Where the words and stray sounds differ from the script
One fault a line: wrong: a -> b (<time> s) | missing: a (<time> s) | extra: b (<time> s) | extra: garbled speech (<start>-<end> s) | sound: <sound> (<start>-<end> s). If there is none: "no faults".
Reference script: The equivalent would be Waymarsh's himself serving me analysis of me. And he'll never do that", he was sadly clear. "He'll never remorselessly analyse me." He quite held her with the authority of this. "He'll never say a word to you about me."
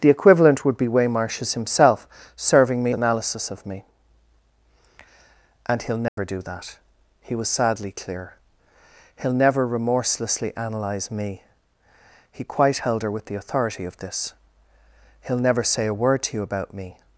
sound: dropout (6.1-6.2 s)